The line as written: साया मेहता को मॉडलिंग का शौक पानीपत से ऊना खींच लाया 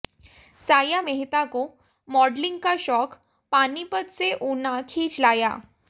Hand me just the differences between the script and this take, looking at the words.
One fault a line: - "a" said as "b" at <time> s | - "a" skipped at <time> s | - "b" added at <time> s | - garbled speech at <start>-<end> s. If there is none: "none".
none